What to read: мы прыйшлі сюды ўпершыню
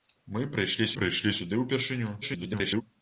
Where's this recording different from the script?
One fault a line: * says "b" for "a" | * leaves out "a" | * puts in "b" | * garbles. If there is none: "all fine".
* puts in "прыйшлі"
* garbles